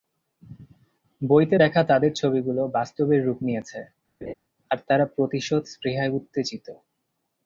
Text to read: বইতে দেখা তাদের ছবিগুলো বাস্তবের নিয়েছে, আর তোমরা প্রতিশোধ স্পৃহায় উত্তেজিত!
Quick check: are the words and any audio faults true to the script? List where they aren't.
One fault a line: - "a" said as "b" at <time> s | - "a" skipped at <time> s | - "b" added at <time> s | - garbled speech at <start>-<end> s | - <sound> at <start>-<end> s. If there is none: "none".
- "রূপ" added at 3.2 s
- laugh at 4.2-4.3 s
- "তোমরা" said as "তারা" at 4.9 s